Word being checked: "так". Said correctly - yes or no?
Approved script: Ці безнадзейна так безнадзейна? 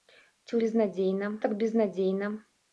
yes